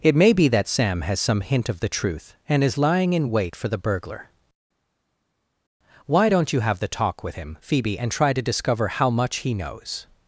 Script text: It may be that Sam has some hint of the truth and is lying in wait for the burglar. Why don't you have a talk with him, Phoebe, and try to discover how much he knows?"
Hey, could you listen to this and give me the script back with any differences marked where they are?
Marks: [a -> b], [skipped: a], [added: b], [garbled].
It may be that Sam has some hint of the truth and is lying in wait for the burglar. Why don't you have [a -> the] talk with him, Phoebe, and try to discover how much he knows?"